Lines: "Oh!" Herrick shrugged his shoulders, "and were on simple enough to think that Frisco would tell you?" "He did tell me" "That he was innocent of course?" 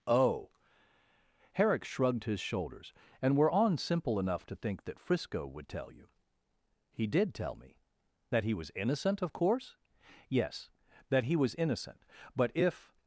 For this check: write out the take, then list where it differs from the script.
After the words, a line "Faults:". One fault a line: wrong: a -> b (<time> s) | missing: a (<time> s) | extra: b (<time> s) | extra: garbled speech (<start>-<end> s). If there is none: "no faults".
"Oh!" Herrick shrugged his shoulders, "and were on simple enough to think that Frisco would tell you?" "He did tell me" "That he was innocent of course?" "Yes. That he was innocent. But if
Faults:
extra: Yes That he was innocent But if (10.3 s)